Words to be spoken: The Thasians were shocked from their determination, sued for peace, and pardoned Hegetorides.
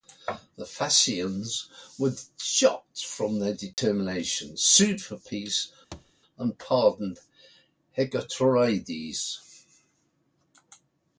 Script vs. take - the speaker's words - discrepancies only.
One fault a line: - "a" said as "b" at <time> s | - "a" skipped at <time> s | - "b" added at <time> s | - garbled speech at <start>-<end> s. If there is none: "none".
none